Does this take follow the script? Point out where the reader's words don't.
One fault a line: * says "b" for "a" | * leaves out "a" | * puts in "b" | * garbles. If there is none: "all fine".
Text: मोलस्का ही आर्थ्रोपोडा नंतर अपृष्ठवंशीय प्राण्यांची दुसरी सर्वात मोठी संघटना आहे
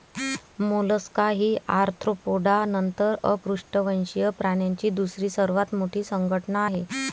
all fine